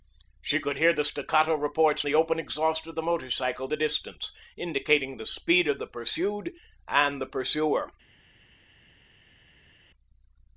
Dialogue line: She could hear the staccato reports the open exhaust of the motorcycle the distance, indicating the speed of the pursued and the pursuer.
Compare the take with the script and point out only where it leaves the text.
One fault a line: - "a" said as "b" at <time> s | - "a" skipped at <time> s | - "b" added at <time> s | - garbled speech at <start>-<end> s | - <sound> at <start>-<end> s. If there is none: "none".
none